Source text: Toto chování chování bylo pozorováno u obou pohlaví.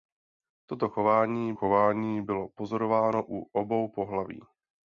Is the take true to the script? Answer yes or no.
yes